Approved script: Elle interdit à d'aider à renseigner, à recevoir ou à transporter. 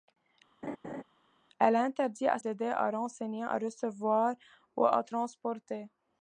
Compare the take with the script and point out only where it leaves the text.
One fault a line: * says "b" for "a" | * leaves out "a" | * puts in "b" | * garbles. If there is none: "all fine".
all fine